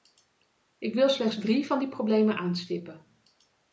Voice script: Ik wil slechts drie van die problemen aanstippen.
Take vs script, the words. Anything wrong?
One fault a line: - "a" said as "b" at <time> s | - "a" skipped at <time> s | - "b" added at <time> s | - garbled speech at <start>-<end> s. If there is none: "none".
none